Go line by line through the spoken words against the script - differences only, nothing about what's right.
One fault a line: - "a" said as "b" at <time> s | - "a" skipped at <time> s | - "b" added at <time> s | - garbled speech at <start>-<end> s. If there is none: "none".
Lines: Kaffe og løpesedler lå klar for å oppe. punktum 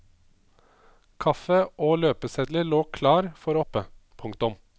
none